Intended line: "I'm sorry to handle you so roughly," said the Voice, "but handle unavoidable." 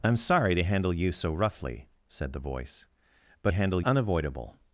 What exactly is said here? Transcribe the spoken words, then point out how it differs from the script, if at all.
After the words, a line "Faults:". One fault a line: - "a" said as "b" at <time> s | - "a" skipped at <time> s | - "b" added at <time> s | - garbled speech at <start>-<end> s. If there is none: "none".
"I'm sorry to handle you so roughly," said the Voice, "but handle unavoidable."
Faults:
none